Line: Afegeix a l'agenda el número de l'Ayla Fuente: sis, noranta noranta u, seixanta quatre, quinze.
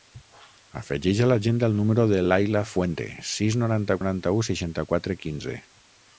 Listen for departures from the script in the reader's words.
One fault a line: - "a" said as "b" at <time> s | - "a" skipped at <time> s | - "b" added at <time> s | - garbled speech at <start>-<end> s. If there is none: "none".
none